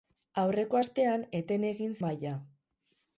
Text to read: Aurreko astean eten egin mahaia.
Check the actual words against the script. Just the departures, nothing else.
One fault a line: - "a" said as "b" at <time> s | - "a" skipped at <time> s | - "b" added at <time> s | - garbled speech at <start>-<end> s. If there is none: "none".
none